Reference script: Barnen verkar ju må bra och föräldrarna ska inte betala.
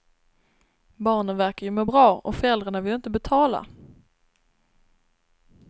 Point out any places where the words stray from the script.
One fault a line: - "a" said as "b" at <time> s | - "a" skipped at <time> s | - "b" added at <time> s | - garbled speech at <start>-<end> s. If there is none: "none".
- "ska" said as "vill" at 2.8 s